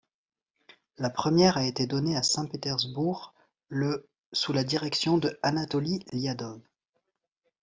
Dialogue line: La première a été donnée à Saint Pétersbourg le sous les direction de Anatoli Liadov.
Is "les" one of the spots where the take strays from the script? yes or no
yes